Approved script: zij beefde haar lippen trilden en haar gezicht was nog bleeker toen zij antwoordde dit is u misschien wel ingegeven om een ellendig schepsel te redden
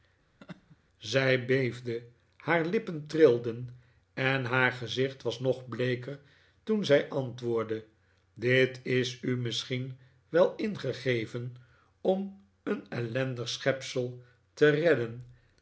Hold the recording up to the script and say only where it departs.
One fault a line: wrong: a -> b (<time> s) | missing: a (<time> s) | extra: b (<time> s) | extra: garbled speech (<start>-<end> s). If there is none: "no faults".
no faults